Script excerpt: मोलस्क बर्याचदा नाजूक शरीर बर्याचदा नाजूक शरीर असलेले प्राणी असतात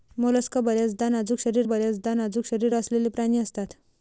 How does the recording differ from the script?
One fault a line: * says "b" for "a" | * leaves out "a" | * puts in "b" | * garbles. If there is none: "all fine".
all fine